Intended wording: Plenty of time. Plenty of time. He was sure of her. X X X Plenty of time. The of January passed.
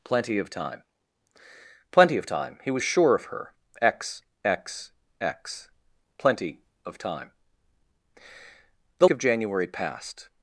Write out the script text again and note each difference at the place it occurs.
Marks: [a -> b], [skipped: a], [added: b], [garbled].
Plenty of time. Plenty of time. He was sure of her. X X X Plenty of time. The of January passed.